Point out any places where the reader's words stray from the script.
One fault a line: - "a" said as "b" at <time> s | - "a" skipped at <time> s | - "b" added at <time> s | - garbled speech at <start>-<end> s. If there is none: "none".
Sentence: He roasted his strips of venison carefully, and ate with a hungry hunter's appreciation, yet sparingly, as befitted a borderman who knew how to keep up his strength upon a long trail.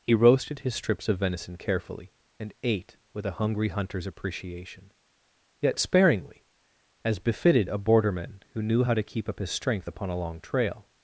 none